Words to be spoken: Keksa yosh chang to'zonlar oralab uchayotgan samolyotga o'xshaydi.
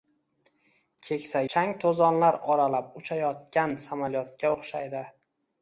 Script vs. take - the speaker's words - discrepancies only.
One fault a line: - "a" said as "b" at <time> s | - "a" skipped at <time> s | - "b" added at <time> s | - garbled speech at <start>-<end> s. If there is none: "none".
- "yosh" skipped at 1.4 s